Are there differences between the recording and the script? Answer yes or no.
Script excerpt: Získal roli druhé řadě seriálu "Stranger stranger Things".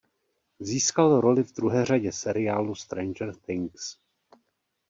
yes